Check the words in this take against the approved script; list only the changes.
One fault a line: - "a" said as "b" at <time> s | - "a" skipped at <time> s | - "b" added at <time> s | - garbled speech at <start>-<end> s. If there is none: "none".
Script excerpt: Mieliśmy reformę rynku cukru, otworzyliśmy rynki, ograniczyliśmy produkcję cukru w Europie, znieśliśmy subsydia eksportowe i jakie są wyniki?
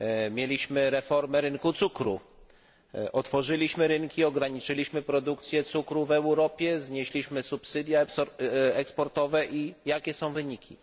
none